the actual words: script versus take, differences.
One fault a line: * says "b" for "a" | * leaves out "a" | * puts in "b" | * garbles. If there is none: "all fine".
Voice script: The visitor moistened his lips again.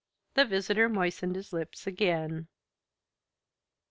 all fine